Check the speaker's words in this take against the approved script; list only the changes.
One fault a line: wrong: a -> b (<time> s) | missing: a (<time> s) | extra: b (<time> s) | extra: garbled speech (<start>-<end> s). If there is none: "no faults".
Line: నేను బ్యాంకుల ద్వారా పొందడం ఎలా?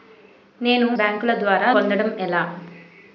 no faults